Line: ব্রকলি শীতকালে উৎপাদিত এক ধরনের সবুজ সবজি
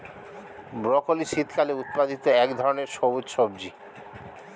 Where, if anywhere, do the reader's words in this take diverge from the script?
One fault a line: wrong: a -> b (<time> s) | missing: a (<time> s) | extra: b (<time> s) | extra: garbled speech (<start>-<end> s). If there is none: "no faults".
no faults